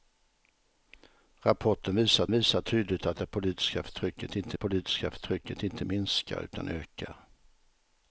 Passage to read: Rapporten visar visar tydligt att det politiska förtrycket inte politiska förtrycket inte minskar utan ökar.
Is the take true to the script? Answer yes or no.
yes